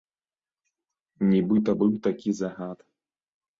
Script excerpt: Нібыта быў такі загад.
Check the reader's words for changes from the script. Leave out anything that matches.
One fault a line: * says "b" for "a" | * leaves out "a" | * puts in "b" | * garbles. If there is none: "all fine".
all fine